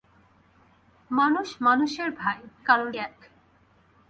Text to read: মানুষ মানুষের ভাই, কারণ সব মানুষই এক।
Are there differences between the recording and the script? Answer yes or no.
yes